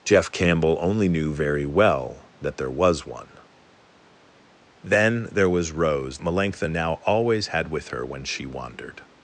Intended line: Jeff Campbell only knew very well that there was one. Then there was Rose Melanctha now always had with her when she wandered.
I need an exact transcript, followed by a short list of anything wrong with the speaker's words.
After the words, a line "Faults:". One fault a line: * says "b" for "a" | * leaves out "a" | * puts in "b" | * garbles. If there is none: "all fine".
Jeff Campbell only knew very well that there was one. Then there was Rose Melanctha now always had with her when she wandered.
Faults:
all fine